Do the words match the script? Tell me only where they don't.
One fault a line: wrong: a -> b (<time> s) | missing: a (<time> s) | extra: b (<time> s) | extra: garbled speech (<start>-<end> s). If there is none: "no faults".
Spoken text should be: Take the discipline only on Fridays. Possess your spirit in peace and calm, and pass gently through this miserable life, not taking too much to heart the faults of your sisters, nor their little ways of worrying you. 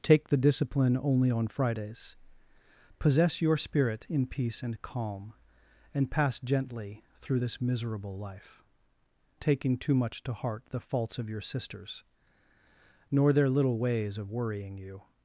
missing: not (8.6 s)